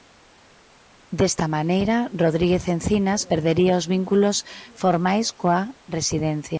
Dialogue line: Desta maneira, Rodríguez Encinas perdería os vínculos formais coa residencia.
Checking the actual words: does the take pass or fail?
pass